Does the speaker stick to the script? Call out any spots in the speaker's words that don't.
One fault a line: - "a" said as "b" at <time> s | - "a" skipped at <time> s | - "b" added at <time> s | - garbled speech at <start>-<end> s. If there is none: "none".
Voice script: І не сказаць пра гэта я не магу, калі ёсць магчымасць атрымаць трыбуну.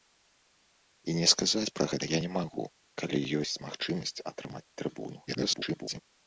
- garbled speech at 5.3-6.0 s